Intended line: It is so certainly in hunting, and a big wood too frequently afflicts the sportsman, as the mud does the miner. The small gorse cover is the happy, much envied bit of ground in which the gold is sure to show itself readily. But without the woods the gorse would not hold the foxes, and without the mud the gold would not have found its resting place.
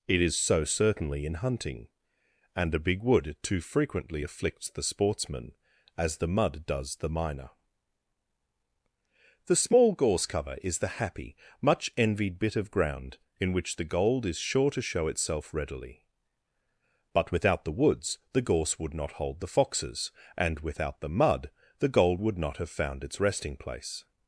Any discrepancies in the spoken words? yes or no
no